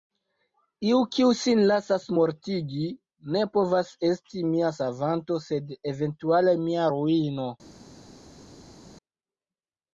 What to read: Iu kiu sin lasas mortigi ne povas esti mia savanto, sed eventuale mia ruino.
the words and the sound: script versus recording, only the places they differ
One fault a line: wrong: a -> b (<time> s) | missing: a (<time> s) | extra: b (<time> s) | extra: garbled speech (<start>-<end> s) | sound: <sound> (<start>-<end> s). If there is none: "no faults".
no faults